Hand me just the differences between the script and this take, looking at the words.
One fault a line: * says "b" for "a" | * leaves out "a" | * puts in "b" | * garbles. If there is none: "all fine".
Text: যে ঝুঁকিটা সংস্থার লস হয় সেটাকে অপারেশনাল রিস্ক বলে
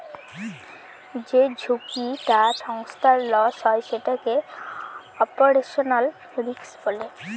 all fine